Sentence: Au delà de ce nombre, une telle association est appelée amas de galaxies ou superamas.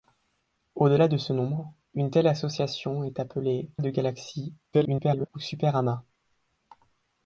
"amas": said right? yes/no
no